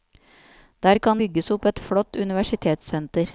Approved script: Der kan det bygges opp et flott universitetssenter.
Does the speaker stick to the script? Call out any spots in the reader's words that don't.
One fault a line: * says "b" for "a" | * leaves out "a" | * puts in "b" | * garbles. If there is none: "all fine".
* leaves out "det"